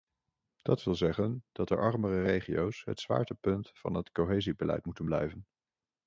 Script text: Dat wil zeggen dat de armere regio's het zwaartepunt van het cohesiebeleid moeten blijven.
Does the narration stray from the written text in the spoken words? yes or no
no